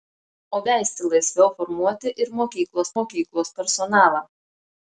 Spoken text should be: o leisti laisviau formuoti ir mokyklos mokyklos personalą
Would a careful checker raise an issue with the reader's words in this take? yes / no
no